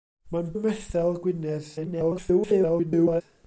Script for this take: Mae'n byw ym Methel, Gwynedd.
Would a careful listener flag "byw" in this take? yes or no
yes